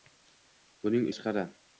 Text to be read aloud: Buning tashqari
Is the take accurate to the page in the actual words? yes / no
yes